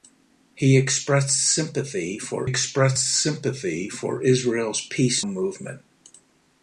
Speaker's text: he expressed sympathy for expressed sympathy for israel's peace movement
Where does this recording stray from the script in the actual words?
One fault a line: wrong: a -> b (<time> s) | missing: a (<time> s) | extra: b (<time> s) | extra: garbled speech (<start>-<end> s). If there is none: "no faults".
no faults